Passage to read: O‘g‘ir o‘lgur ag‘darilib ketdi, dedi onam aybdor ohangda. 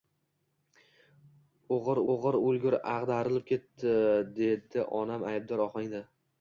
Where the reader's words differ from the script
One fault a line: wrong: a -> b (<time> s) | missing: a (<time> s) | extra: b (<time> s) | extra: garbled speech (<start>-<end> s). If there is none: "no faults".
extra: o‘g‘ir (2.1 s)